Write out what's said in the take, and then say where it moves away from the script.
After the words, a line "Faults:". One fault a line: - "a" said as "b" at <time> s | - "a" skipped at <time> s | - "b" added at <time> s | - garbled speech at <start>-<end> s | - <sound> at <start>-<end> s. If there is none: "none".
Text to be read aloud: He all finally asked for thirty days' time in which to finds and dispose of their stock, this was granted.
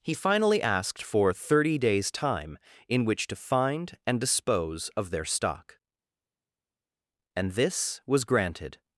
He finally asked for thirty days' time in which to find and dispose of their stock, and this was granted.
Faults:
- "all" skipped at 0.1 s
- "finds" said as "find" at 3.4 s
- "and" added at 7.4 s